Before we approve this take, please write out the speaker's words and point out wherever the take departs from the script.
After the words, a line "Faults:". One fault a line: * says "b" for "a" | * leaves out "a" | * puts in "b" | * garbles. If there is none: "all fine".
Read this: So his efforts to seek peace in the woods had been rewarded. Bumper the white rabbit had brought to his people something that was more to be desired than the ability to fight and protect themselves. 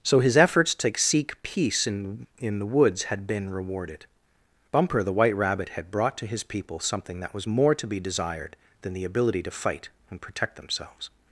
So his efforts to seek peace in in the woods had been rewarded. Bumper the white rabbit had brought to his people something that was more to be desired than the ability to fight and protect themselves.
Faults:
* puts in "in"